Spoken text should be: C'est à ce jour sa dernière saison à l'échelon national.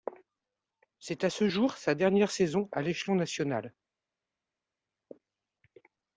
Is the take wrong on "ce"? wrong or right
right